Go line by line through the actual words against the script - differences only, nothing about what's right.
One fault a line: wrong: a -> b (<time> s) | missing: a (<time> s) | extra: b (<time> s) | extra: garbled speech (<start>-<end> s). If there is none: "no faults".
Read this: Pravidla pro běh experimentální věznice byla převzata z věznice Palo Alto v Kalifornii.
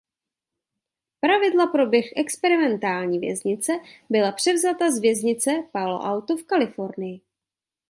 no faults